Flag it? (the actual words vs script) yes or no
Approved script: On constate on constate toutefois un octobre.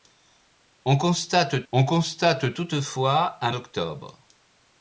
no